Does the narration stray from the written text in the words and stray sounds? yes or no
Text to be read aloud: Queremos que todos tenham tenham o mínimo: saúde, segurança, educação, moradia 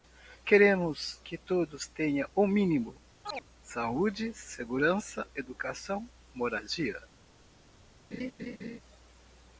yes